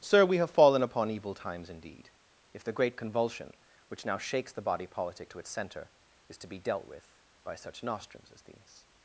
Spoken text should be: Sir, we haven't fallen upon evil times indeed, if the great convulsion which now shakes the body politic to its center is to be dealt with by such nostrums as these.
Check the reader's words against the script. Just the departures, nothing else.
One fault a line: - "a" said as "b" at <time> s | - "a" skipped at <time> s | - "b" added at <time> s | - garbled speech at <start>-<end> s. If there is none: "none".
- "haven't" said as "have" at 0.4 s